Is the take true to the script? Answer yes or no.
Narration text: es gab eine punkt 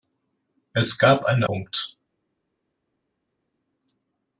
yes